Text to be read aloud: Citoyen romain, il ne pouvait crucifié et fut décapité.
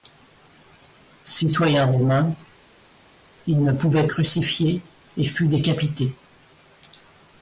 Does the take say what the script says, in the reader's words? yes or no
yes